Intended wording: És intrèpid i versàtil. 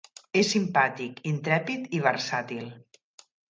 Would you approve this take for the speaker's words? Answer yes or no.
no